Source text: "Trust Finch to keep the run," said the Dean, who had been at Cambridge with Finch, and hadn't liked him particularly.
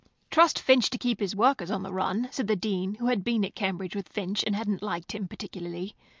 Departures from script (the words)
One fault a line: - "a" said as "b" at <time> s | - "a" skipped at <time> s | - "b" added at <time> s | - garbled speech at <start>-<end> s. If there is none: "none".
- "his workers on" added at 1.2 s